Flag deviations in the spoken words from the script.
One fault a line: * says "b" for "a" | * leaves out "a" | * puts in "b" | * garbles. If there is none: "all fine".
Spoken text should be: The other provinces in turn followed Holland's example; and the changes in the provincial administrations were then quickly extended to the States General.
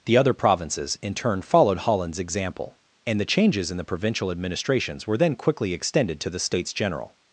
all fine